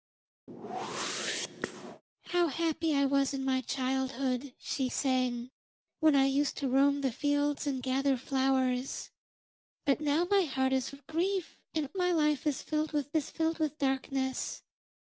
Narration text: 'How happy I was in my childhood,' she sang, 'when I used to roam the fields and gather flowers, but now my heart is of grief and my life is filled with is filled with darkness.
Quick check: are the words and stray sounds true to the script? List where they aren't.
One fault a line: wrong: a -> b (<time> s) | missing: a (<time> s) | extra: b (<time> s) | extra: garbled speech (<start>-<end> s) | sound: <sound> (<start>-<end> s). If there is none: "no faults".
sound: whoosh (0.5-2.0 s)